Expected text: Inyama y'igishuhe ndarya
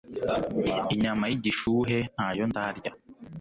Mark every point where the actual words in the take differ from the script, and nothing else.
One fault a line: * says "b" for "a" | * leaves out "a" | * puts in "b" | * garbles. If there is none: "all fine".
* puts in "ntayo"